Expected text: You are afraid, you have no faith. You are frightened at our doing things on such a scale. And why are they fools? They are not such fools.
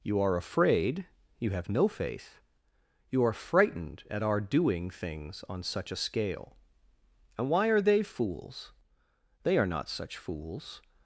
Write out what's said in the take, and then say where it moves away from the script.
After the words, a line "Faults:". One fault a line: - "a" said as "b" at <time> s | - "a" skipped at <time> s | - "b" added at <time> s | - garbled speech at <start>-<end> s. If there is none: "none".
You are afraid, you have no faith. You are frightened at our doing things on such a scale. And why are they fools? They are not such fools.
Faults:
none